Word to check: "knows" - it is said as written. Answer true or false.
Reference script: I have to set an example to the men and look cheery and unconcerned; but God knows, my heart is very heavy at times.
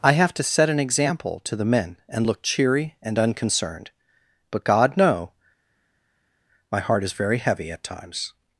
false